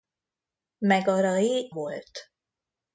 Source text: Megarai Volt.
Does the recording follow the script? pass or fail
pass